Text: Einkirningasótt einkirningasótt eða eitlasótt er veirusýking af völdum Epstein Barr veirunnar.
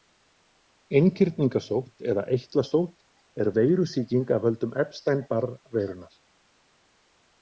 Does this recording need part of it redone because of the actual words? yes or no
yes